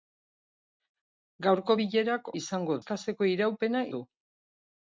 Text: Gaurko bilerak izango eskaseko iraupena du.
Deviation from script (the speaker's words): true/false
false